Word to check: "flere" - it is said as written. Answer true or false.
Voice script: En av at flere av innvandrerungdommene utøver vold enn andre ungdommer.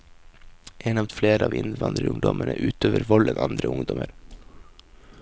true